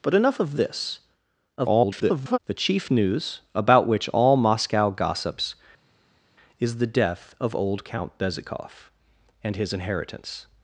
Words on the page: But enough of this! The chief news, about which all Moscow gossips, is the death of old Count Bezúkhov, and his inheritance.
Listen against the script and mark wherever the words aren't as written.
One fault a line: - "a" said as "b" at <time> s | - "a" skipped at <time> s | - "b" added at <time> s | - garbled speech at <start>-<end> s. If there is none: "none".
- garbled speech at 1.6-2.4 s